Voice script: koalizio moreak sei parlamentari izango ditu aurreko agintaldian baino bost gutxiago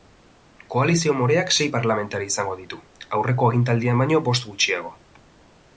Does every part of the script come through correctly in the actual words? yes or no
yes